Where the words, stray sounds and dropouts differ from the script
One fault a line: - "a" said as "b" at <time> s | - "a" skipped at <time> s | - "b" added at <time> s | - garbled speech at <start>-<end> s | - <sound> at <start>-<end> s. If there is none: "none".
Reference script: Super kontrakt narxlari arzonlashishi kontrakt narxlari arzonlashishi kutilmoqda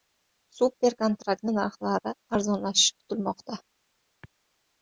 - "kontrakt narxlari arzonlashishi" skipped at 3.0 s